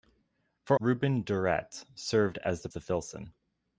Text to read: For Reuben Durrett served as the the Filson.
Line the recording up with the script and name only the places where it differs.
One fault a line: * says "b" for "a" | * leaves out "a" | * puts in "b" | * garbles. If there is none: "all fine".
all fine